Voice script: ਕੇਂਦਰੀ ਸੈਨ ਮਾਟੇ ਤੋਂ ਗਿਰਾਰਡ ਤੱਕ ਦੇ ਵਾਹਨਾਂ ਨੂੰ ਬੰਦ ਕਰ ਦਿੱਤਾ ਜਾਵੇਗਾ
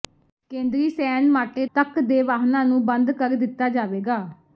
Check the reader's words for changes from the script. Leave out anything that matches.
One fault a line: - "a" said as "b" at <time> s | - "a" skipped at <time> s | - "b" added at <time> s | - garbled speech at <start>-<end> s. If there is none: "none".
- "ਤੋਂ ਗਿਰਾਰਡ" skipped at 1.6 s